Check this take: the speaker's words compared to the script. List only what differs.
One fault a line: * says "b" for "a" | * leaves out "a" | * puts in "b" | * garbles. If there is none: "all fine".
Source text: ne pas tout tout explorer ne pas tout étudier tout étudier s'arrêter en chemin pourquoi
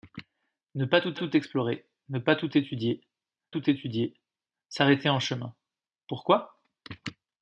all fine